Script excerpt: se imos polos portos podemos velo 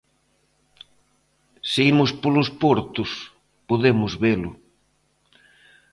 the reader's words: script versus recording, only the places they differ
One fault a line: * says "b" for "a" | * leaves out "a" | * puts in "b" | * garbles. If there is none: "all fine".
all fine